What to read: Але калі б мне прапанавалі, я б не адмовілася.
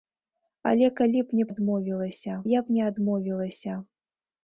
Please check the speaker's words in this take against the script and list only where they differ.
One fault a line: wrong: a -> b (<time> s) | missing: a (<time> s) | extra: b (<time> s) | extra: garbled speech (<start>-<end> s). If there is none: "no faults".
wrong: прапанавалі -> адмовілася (1.5 s)